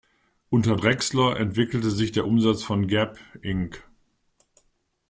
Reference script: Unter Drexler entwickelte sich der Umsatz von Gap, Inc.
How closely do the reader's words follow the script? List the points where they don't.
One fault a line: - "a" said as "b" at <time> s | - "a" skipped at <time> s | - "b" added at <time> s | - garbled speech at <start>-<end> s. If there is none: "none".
none